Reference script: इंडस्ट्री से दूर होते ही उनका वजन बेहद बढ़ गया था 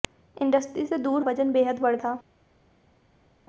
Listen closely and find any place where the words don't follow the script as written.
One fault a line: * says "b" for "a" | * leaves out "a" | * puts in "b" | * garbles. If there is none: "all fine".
* leaves out "होते ही उनका"
* leaves out "गया"